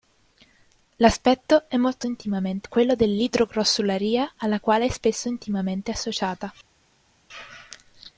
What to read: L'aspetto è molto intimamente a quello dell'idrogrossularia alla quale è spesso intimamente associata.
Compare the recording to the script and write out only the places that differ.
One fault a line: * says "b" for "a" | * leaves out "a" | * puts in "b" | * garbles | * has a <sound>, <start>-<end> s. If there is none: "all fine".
all fine